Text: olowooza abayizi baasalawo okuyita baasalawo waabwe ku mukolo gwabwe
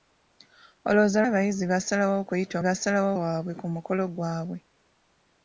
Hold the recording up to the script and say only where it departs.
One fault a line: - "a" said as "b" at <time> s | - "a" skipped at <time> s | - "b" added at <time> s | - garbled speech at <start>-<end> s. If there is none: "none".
none